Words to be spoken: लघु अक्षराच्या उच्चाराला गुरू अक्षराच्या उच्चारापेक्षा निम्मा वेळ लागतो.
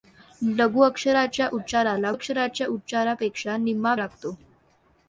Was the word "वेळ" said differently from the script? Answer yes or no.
yes